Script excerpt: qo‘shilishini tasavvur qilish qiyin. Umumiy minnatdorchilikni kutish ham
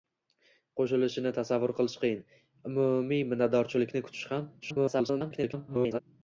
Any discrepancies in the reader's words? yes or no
yes